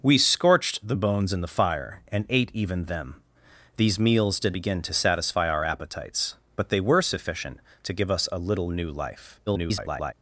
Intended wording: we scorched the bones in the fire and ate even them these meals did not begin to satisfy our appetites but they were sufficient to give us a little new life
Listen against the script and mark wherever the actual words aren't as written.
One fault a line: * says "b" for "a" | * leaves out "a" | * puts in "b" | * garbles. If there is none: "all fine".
* leaves out "not"
* garbles